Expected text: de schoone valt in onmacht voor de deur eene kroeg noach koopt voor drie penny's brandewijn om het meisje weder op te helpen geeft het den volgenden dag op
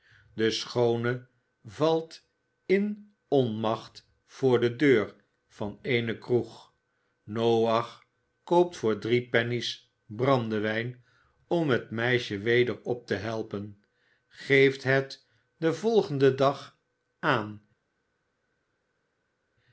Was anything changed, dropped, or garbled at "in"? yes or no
no